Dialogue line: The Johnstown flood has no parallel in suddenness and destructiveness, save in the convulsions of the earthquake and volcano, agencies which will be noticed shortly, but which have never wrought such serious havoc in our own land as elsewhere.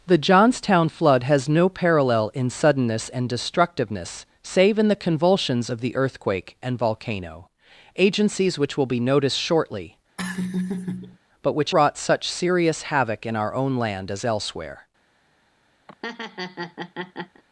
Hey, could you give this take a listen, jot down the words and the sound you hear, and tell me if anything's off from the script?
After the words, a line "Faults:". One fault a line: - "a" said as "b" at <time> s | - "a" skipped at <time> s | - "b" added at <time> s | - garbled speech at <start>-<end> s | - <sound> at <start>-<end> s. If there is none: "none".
The Johnstown flood has no parallel in suddenness and destructiveness, save in the convulsions of the earthquake and volcano, agencies which will be noticed shortly, but which wrought such serious havoc in our own land as elsewhere.
Faults:
- laugh at 10.2-11.2 s
- "have never" skipped at 11.7 s
- laugh at 15.9-17.4 s